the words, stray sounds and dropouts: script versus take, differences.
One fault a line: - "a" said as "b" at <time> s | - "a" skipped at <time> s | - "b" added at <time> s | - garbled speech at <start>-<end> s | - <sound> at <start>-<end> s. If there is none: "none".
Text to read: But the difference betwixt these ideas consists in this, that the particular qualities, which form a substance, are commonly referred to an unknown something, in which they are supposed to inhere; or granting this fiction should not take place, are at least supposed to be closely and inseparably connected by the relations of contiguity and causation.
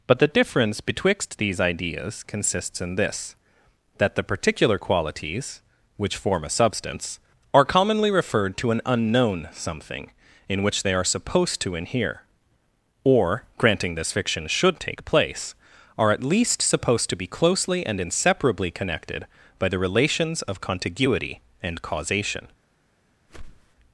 - "not" skipped at 14.8 s
- whoosh at 23.3-23.8 s